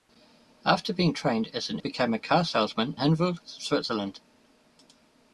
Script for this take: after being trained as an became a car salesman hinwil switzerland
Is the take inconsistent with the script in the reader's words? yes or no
no